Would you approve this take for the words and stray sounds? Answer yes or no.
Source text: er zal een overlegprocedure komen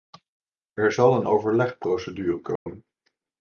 no